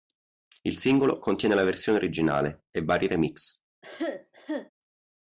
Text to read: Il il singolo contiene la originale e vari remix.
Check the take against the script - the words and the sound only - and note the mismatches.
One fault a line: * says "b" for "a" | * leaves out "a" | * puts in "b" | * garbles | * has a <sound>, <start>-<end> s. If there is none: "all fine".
* leaves out "il"
* puts in "versione"
* has a cough, 3.8-4.7 s